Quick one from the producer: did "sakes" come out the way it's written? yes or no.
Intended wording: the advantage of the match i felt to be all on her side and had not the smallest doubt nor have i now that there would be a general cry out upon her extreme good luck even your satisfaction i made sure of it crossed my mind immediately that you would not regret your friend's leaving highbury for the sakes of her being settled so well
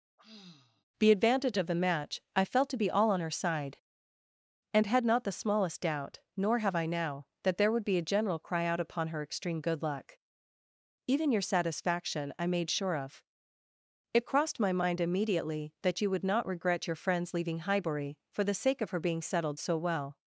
no